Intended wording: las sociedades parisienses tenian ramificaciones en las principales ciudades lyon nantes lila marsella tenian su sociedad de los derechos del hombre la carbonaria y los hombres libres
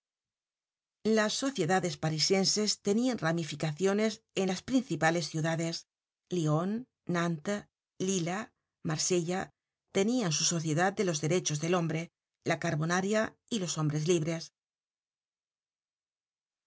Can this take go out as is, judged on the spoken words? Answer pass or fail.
pass